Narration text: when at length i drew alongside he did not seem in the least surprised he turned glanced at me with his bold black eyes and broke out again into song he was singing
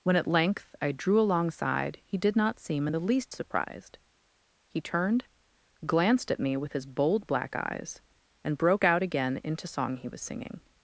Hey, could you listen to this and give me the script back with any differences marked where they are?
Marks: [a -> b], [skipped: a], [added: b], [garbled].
when at length i drew alongside he did not seem in the least surprised he turned glanced at me with his bold black eyes and broke out again into song he was singing